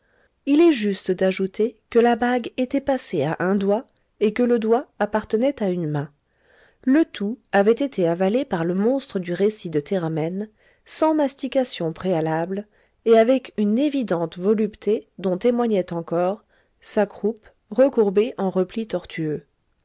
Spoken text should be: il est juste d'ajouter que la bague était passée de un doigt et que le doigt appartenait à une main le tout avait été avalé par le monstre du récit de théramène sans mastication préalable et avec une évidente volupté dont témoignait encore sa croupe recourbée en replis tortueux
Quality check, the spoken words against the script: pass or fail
fail